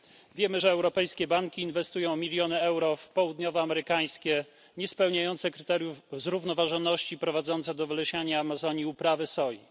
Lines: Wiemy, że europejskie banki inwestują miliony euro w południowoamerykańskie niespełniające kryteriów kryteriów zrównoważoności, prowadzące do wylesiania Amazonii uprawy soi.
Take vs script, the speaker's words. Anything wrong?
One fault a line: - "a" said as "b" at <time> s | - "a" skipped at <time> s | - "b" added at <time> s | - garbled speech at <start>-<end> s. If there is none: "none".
- "kryteriów" skipped at 6.0 s